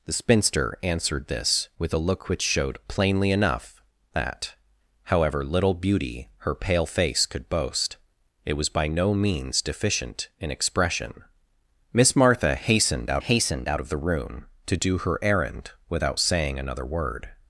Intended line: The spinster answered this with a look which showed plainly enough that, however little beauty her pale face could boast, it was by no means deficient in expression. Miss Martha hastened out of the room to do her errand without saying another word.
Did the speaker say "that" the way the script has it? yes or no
yes